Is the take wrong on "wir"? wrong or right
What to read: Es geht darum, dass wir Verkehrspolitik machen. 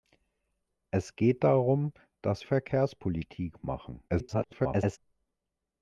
wrong